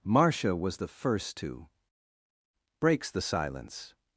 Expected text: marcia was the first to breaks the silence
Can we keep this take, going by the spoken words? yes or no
yes